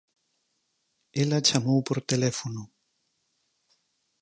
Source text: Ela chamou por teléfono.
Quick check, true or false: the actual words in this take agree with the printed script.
true